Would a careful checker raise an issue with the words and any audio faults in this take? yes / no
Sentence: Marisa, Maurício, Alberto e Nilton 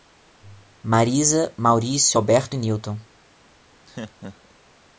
yes